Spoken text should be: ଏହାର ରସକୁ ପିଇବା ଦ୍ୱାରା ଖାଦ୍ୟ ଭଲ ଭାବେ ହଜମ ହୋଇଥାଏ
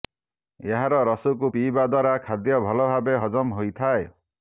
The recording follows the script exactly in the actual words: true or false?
true